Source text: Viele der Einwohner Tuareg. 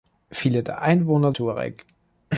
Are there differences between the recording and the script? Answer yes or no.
no